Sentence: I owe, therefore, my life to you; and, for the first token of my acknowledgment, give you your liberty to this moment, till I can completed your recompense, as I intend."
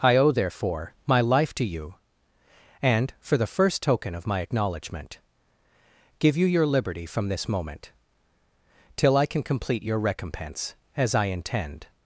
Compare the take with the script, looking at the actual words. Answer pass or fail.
fail